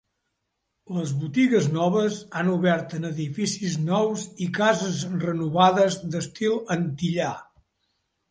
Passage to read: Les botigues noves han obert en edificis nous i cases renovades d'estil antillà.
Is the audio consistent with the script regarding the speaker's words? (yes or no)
yes